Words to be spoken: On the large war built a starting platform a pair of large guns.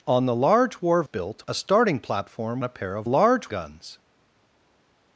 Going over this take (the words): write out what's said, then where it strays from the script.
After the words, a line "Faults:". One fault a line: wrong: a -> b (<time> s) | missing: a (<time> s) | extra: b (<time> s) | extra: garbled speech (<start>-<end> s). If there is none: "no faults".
On the large war built a starting platform a pair of large guns.
Faults:
no faults